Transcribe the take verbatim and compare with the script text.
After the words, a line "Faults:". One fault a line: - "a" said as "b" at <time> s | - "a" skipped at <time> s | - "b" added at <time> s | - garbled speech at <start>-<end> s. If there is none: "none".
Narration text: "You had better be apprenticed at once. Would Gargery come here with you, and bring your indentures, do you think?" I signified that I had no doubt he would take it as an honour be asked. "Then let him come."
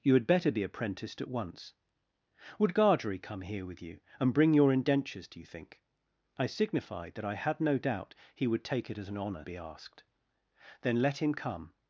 "You had better be apprenticed at once. Would Gargery come here with you, and bring your indentures, do you think?" I signified that I had no doubt he would take it as an honour be asked. "Then let him come."
Faults:
none